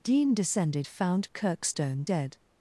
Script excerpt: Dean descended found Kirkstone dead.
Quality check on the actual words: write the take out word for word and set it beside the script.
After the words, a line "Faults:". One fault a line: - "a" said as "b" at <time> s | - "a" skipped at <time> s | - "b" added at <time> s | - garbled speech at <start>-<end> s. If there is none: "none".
Dean descended found Kirkstone dead.
Faults:
none